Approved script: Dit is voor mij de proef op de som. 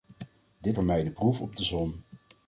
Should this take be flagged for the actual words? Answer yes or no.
yes